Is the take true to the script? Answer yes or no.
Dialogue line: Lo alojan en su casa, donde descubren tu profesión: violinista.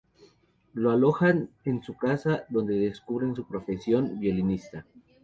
no